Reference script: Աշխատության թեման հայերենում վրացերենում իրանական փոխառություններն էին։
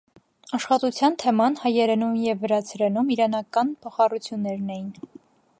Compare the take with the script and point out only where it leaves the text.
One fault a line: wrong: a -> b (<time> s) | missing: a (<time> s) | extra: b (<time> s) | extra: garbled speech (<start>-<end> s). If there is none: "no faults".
extra: և (2.2 s)